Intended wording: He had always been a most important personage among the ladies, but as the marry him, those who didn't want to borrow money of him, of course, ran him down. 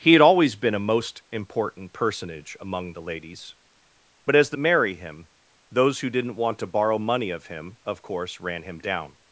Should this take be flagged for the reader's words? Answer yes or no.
no